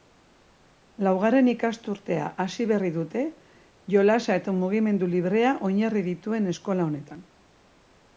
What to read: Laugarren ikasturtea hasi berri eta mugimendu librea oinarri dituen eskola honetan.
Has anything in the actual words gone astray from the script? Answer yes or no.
yes